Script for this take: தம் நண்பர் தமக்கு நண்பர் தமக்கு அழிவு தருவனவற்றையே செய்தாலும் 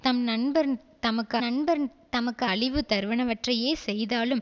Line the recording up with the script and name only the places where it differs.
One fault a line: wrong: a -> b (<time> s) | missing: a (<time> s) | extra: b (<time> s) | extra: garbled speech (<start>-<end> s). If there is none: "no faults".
no faults